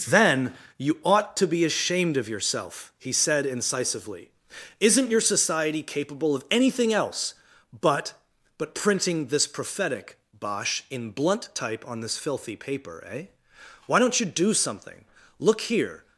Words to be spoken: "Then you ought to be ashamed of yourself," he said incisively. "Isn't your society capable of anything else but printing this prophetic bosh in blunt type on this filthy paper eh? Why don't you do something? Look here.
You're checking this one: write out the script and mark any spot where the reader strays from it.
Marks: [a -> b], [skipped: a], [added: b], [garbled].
"Then you ought to be ashamed of yourself," he said incisively. "Isn't your society capable of anything else but [added: but] printing this prophetic bosh in blunt type on this filthy paper eh? Why don't you do something? Look here.